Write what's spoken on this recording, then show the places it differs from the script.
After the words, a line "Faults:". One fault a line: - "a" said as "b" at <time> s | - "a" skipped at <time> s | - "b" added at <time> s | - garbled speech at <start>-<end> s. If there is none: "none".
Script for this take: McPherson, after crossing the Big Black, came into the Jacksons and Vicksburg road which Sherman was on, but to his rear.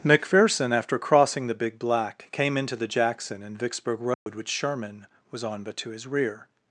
McPherson, after crossing the Big Black, came into the Jackson and Vicksburg road which Sherman was on, but to his rear.
Faults:
- "Jacksons" said as "Jackson" at 2.9 s